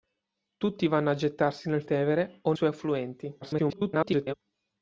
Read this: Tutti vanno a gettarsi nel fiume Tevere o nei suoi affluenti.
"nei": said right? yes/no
no